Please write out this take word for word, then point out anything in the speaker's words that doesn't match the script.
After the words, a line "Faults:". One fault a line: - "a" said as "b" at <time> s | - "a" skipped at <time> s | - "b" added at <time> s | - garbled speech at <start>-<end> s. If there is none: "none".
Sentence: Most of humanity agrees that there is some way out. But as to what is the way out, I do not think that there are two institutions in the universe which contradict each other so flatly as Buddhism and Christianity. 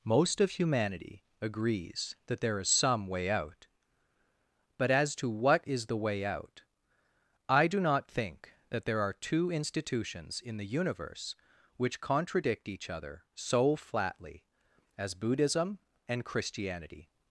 Most of humanity agrees that there is some way out. But as to what is the way out, I do not think that there are two institutions in the universe which contradict each other so flatly as Buddhism and Christianity.
Faults:
none